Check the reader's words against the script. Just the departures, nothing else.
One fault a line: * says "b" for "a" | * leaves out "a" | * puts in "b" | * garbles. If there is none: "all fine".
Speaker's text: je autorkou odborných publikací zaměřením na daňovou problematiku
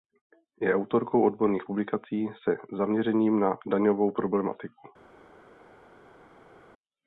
* puts in "se"